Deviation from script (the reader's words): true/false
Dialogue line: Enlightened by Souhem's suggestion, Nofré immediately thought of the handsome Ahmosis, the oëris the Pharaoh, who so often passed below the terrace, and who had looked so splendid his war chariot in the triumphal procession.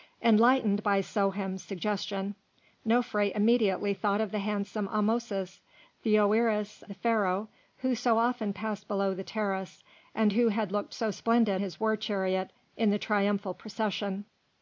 false